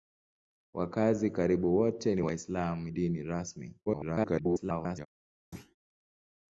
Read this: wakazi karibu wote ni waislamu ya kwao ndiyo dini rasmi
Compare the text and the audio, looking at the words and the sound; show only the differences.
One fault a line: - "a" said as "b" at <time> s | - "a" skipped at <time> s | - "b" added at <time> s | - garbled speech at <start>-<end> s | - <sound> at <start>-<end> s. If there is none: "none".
- "ya kwao ndiyo" skipped at 2.9 s
- garbled speech at 3.9-5.1 s
- thud at 5.5-5.8 s